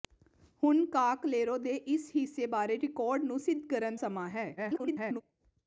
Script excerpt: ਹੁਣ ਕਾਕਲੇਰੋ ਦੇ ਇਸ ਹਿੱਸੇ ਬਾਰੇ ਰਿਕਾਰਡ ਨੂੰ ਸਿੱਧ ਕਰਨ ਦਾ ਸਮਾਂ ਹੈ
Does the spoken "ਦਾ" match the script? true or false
false